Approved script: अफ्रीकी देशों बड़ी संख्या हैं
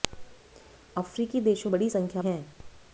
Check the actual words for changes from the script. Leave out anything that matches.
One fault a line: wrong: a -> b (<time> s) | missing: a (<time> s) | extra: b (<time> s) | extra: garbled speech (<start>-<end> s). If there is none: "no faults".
no faults